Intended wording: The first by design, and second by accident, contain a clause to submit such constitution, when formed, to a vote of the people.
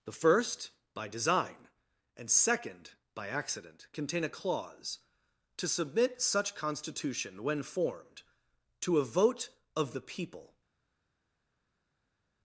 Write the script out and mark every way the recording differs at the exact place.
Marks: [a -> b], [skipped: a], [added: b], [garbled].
The first by design, and second by accident, contain a clause to submit such constitution, when formed, to a vote of the people.